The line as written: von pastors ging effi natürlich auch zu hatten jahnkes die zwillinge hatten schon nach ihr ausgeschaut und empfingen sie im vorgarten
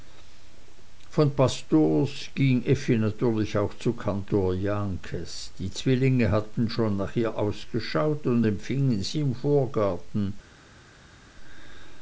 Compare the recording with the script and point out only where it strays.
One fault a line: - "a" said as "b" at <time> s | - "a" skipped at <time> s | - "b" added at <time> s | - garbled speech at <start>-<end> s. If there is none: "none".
- "hatten" said as "kantor" at 3.9 s